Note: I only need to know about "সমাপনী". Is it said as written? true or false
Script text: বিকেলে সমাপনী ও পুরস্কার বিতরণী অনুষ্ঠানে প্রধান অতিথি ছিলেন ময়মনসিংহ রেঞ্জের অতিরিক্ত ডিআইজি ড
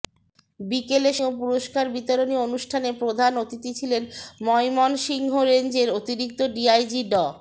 false